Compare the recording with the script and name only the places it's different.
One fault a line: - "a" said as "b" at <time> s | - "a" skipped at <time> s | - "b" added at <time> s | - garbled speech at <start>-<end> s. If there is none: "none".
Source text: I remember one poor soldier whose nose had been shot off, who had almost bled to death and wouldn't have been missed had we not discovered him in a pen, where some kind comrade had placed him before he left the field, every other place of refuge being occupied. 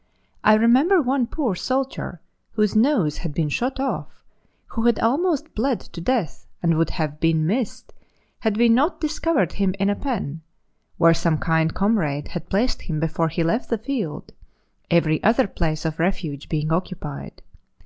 - "wouldn't" said as "would" at 6.8 s